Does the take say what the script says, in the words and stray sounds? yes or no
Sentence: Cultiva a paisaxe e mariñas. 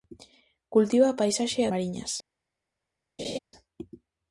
no